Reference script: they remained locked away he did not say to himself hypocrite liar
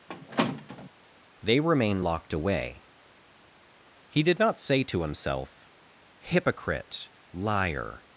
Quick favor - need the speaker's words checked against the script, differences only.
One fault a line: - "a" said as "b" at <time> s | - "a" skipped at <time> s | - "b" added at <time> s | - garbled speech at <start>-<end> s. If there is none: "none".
- "remained" said as "remain" at 1.6 s